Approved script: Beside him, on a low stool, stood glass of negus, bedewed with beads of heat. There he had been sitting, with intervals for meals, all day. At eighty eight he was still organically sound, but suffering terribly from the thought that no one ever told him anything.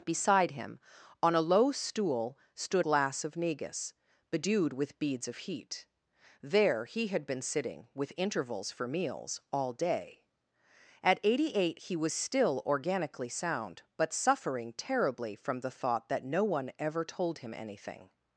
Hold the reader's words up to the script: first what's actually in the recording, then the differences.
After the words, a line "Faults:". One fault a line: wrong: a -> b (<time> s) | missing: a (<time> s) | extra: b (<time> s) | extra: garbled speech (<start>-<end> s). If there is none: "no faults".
Beside him, on a low stool, stood glass of negus, bedewed with beads of heat. There he had been sitting, with intervals for meals, all day. At eighty eight he was still organically sound, but suffering terribly from the thought that no one ever told him anything.
Faults:
no faults